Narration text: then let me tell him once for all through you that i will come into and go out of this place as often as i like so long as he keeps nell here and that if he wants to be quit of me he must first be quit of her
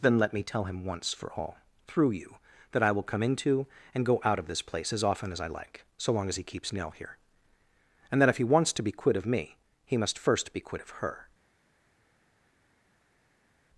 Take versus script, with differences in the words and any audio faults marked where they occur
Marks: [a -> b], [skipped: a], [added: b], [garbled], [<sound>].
then let me tell him once for all through you that i will come into and go out of this place as often as i like so long as he keeps nell here and that if he wants to be quit of me he must first be quit of her